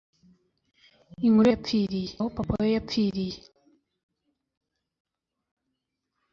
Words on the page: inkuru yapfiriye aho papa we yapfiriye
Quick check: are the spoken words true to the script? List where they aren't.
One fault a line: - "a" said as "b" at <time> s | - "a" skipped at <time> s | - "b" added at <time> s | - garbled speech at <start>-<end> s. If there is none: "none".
none